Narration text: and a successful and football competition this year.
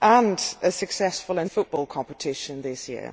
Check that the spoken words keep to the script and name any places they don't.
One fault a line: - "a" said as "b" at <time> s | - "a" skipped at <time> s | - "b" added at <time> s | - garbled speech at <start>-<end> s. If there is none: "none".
none